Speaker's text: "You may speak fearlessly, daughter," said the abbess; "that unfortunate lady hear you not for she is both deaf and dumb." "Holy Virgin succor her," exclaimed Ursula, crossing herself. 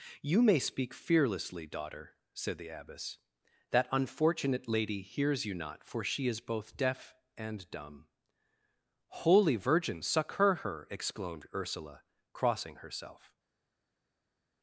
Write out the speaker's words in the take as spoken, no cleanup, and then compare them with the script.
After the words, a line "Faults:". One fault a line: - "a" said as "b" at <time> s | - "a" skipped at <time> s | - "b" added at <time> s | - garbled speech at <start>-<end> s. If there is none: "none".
"You may speak fearlessly, daughter," said the abbess; "that unfortunate lady hears you not for she is both deaf and dumb." "Holy Virgin succor her," exclaimed Ursula, crossing herself.
Faults:
- "hear" said as "hears" at 5.0 s